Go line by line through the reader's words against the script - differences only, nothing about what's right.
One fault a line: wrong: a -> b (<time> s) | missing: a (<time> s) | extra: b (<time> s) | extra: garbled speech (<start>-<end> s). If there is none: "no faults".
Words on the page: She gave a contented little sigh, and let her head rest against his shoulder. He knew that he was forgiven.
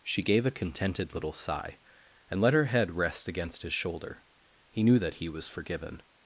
no faults